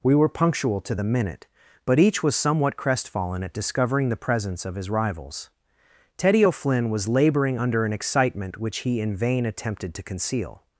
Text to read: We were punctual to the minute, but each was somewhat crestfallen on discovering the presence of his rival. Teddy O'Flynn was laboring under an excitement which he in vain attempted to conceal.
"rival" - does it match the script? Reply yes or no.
no